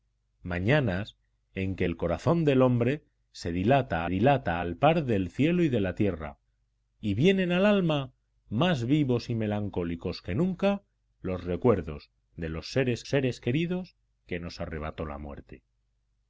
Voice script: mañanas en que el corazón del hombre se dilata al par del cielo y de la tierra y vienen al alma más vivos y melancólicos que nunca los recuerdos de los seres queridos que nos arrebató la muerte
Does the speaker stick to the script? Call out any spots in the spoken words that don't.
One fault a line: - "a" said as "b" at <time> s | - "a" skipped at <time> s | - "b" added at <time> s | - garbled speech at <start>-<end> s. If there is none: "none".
- "dilata" added at 4.1 s
- "seres" added at 13.1 s